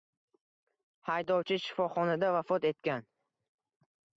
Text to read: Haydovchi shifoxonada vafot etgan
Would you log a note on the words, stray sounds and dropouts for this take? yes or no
no